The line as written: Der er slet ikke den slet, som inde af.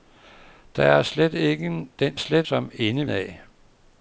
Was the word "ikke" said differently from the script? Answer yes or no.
no